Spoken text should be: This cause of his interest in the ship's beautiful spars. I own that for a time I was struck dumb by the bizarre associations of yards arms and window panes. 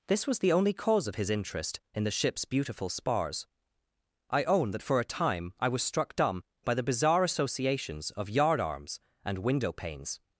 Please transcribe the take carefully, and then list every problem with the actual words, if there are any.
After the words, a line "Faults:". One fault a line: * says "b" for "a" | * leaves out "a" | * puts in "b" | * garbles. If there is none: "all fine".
This was the only cause of his interest in the ship's beautiful spars. I own that for a time I was struck dumb by the bizarre associations of yard arms and window panes.
Faults:
* puts in "was the only"
* says "yard" for "yards"